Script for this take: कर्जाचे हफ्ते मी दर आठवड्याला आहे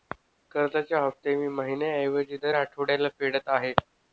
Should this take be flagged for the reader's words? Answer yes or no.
yes